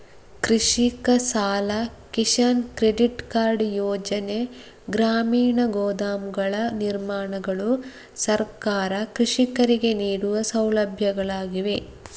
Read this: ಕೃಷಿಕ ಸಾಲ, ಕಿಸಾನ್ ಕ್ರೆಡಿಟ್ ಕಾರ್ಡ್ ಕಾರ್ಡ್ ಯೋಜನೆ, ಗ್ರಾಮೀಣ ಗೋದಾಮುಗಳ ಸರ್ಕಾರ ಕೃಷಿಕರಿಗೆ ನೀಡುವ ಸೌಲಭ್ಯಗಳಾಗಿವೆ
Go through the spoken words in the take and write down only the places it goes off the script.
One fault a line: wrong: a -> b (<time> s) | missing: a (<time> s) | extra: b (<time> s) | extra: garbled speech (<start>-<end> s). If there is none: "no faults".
missing: ಕಾರ್ಡ್ (3.6 s)
extra: ನಿರ್ಮಾಣಗಳು (6.8 s)